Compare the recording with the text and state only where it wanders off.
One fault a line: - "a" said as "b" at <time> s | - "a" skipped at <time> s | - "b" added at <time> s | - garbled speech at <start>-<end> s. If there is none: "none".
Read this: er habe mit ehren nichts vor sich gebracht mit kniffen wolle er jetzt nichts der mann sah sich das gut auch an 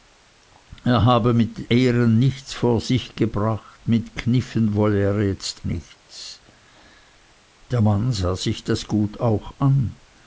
none